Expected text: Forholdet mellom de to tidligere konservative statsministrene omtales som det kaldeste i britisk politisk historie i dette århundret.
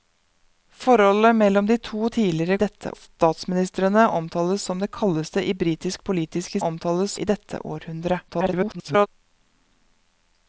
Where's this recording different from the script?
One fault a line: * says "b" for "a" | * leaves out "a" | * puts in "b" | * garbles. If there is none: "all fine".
* says "dette" for "konservative"
* says "omtales" for "historie"
* garbles